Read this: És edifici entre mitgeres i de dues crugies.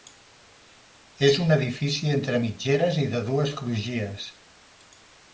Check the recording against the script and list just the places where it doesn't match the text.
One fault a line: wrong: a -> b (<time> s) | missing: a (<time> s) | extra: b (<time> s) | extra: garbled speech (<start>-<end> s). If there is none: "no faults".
extra: un (1.4 s)